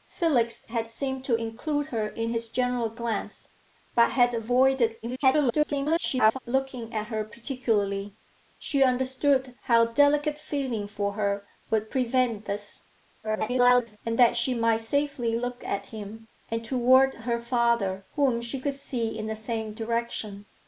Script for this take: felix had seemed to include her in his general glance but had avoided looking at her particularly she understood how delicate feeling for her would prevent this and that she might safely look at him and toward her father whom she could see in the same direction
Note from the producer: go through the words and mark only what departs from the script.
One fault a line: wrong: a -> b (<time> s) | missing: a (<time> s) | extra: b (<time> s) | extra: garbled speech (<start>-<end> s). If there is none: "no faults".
extra: garbled speech (5.0-6.4 s)
extra: garbled speech (13.2-14.0 s)